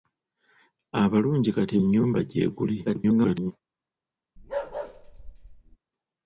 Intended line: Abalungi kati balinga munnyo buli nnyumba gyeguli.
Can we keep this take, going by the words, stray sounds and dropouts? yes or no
no